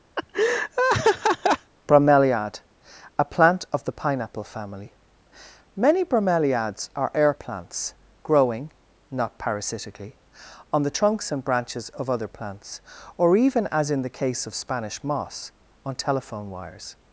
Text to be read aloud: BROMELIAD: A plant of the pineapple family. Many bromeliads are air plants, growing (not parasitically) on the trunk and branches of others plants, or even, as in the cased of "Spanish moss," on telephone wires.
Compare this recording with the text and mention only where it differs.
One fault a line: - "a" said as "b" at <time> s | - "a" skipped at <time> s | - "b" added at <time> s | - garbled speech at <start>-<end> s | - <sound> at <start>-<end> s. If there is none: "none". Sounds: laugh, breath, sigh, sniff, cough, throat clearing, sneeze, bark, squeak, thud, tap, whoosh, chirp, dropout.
- laugh at 0.2-1.7 s
- "trunk" said as "trunks" at 11.0 s
- "others" said as "other" at 12.1 s
- "cased" said as "case" at 14.2 s